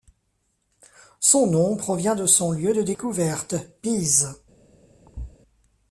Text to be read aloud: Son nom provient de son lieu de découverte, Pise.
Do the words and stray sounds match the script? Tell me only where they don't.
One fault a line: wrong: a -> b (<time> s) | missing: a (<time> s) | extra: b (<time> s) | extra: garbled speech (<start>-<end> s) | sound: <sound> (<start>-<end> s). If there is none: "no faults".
sound: thud (5.1-5.4 s)